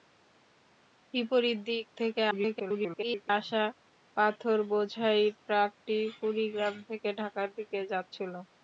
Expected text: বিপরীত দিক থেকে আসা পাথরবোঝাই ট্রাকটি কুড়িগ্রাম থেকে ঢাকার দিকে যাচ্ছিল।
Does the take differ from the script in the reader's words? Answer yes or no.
yes